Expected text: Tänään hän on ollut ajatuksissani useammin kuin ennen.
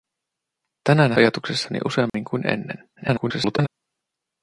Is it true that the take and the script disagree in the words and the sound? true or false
true